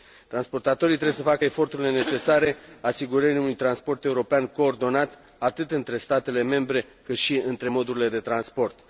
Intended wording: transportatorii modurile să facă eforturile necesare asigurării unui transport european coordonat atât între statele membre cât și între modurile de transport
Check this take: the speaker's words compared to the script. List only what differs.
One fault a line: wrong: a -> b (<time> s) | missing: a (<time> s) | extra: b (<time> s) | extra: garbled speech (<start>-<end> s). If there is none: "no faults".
wrong: modurile -> trebuie (0.9 s)